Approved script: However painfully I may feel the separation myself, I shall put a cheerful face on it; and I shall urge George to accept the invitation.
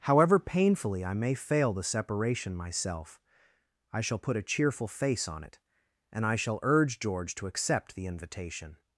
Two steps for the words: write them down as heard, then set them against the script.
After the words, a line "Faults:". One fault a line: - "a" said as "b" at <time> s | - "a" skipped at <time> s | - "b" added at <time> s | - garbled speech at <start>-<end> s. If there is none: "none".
However painfully I may fail the separation myself, I shall put a cheerful face on it; and I shall urge George to accept the invitation.
Faults:
- "feel" said as "fail" at 1.3 s